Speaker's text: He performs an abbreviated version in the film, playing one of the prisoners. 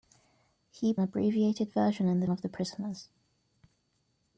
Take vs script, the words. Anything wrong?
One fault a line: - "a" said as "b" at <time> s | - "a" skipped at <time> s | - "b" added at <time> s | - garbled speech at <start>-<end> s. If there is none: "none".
- "performs an" skipped at 0.9 s
- "film playing one" skipped at 2.3 s